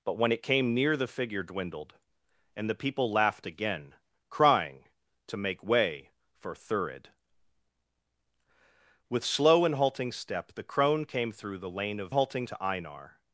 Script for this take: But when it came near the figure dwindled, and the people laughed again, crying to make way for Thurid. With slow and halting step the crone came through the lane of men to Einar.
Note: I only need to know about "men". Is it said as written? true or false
false